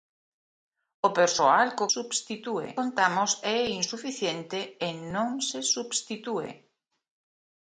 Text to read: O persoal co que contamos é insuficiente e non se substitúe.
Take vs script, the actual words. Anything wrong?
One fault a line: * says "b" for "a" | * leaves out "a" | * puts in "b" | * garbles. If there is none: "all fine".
* says "substitúe" for "que"